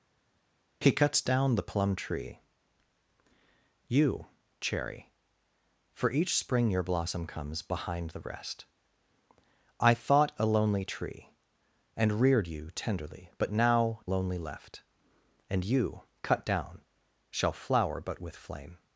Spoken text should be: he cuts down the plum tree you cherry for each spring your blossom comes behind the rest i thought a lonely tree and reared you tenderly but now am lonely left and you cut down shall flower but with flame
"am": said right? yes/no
no